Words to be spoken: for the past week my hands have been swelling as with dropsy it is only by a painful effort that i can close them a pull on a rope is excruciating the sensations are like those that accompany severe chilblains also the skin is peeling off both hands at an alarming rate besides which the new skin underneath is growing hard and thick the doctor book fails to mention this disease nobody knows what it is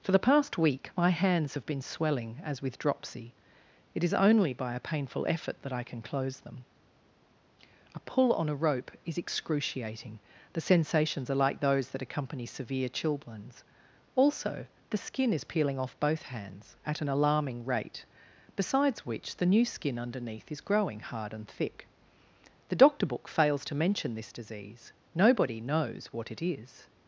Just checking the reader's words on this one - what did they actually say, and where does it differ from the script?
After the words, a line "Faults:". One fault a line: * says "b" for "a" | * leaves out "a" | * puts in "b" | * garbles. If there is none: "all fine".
for the past week my hands have been swelling as with dropsy it is only by a painful effort that i can close them a pull on a rope is excruciating the sensations are like those that accompany severe chilblains also the skin is peeling off both hands at an alarming rate besides which the new skin underneath is growing hard and thick the doctor book fails to mention this disease nobody knows what it is
Faults:
all fine